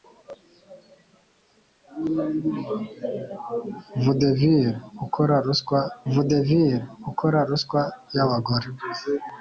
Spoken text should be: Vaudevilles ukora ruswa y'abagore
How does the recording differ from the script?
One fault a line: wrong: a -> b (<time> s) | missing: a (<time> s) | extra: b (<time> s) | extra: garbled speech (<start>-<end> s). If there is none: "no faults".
extra: vaudevilles ukora ruswa (6.1 s)